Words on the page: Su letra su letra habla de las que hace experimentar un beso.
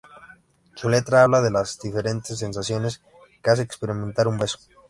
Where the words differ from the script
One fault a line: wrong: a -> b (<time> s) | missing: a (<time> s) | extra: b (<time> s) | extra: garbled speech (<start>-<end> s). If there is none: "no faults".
missing: su letra (1.2 s)
extra: diferentes sensaciones (1.8 s)